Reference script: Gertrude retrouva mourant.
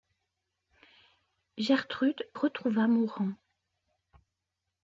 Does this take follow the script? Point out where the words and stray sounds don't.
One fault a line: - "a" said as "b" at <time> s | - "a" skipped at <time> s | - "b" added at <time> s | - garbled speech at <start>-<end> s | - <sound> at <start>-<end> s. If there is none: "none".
none